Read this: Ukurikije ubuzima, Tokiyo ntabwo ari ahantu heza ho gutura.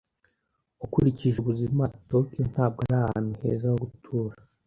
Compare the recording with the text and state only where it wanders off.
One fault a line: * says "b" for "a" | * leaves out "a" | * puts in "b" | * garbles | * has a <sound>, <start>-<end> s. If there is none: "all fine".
all fine